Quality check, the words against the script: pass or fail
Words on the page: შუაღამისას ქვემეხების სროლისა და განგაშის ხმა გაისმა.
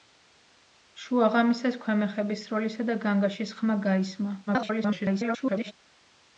fail